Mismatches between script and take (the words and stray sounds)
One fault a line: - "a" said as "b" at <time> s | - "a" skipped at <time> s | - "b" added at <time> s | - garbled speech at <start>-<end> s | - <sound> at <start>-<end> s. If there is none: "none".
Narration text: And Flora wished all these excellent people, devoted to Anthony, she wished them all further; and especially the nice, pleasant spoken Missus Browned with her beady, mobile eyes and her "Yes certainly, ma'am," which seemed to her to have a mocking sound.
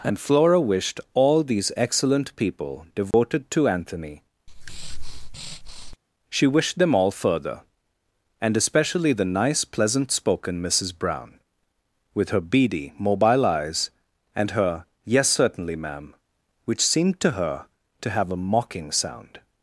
- dropout at 3.1-3.1 s
- breath at 4.5-6.0 s
- "Browned" said as "Brown" at 10.9 s